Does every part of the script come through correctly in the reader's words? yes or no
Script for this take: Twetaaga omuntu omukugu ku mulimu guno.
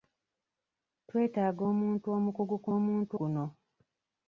no